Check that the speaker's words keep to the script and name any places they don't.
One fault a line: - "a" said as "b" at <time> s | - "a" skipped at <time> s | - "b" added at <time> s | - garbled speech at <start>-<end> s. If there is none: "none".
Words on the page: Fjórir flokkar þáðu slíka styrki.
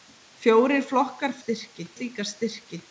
- "þáðu" said as "styrki" at 1.4 s